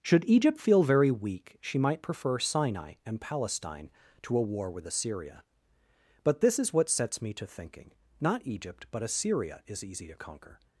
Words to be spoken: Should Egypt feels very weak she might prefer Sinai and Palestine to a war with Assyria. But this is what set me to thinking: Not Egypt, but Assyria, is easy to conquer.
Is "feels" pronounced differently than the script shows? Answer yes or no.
yes